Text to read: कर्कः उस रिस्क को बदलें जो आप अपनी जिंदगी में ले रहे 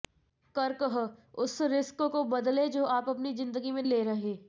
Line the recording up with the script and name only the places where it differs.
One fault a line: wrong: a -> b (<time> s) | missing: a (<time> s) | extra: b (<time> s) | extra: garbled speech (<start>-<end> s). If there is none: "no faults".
no faults